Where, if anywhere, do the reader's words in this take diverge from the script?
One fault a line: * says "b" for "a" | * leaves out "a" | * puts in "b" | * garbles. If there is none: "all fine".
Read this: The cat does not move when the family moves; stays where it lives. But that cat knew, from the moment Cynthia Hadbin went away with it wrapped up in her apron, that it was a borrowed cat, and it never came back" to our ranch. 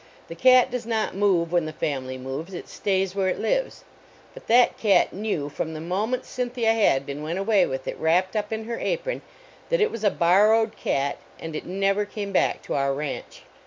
* puts in "it"